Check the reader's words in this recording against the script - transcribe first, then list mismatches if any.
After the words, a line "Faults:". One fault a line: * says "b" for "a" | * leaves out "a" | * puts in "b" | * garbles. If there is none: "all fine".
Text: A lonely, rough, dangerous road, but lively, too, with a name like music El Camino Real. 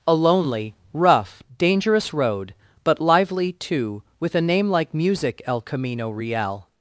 A lonely, rough, dangerous road, but lively, too, with a name like music El Camino Real.
Faults:
all fine